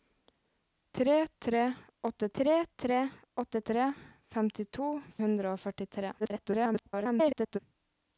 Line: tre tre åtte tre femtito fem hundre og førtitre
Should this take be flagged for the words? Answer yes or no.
yes